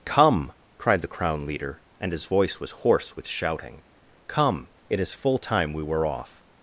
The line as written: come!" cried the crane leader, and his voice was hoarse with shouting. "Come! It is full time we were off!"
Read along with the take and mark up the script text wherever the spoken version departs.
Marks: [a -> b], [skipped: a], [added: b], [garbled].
come!" cried the [crane -> crown] leader, and his voice was hoarse with shouting. "Come! It is full time we were off!"